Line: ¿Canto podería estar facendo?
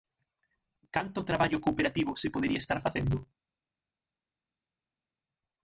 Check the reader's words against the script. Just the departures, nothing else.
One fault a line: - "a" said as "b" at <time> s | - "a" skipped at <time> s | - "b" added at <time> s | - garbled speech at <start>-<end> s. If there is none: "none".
- "traballo cooperativo se" added at 1.2 s